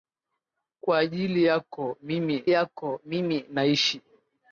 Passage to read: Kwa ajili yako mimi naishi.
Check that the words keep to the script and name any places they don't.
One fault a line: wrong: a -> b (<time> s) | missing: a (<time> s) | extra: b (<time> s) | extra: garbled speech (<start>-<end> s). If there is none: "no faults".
extra: yako mimi (2.5 s)